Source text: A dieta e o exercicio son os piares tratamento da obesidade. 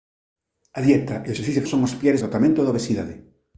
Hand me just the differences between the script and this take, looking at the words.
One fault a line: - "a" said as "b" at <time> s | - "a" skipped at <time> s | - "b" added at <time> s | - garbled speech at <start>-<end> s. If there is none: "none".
none